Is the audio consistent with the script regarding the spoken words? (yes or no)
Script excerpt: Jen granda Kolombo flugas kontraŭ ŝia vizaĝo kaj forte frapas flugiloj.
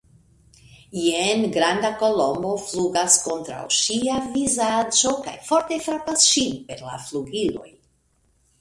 no